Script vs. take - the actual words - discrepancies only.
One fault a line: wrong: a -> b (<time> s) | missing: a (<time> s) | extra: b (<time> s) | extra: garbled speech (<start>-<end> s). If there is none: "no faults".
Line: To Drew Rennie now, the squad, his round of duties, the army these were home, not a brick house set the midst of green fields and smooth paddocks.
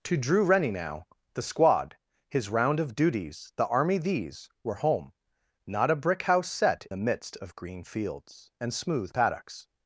no faults